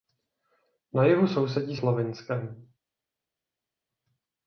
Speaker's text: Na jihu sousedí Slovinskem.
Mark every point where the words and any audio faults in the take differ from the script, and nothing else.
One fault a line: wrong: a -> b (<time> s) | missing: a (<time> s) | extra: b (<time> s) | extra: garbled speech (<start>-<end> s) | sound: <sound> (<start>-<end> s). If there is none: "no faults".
no faults